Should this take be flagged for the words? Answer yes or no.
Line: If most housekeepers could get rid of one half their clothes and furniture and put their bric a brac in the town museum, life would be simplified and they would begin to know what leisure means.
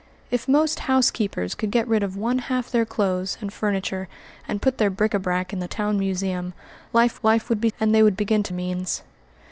yes